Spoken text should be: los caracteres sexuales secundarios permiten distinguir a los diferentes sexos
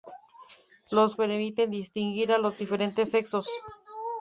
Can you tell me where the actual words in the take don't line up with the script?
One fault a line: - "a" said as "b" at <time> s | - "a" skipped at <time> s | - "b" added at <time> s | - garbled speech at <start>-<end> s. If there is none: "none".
- "caracteres sexuales secundarios" skipped at 1.1 s